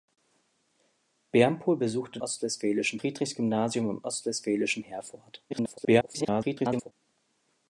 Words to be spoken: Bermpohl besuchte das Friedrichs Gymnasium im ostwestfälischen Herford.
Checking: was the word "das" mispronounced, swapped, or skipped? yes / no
yes